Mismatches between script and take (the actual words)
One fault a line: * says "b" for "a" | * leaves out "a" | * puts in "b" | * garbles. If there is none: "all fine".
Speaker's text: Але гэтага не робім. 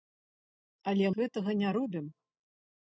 all fine